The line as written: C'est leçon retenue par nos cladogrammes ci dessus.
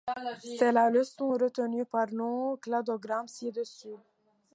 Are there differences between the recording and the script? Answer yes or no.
yes